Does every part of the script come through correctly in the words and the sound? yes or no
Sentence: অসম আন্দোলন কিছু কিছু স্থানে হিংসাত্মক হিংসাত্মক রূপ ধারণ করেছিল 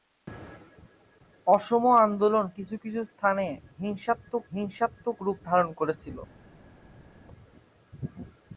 yes